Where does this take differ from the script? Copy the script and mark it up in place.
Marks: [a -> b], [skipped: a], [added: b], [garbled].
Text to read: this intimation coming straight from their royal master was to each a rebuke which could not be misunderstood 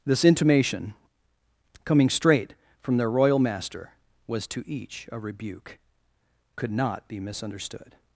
this intimation coming straight from their royal master was to each a rebuke [skipped: which] could not be misunderstood